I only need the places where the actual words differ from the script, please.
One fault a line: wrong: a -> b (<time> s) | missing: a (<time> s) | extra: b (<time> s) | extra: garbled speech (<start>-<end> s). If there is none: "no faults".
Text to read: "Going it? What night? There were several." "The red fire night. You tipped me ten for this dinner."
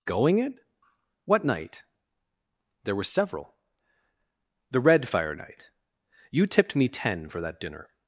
wrong: this -> that (7.4 s)